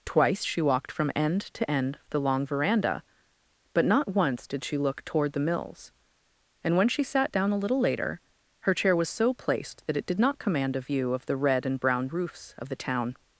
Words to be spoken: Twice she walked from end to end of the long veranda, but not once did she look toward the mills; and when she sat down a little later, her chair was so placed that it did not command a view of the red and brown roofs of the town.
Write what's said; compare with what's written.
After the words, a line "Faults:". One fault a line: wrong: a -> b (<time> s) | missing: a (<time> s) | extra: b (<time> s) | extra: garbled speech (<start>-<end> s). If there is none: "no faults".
Twice she walked from end to end of the long veranda, but not once did she look toward the mills; and when she sat down a little later, her chair was so placed that it did not command a view of the red and brown roofs of the town.
Faults:
no faults